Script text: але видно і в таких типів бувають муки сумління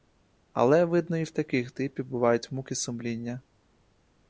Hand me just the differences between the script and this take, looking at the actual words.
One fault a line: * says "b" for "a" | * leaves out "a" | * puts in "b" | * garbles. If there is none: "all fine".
all fine